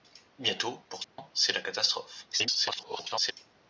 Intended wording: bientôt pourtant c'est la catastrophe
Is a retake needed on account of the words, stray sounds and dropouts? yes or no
yes